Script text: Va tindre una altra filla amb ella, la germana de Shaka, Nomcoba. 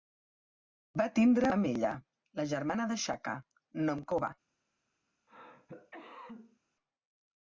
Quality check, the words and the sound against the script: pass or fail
fail